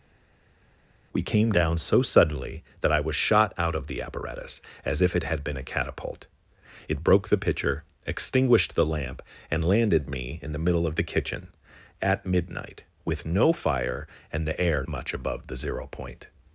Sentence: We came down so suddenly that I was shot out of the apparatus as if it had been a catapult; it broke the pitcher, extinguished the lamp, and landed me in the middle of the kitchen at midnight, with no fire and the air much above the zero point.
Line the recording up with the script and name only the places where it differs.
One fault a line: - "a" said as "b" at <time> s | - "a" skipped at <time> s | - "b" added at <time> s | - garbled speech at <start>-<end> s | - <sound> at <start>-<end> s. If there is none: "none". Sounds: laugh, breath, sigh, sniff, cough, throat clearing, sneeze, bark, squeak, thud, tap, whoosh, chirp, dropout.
none